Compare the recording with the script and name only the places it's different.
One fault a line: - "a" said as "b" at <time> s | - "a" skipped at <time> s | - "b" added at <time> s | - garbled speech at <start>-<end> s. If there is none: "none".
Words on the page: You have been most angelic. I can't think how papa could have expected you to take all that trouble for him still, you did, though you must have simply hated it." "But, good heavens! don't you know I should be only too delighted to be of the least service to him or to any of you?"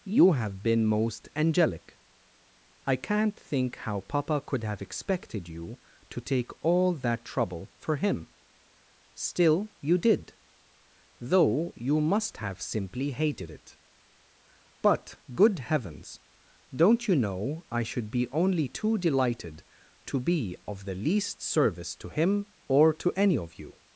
none